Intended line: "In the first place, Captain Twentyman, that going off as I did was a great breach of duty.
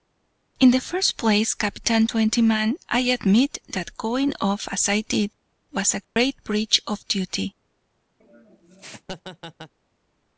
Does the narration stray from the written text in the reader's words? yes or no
yes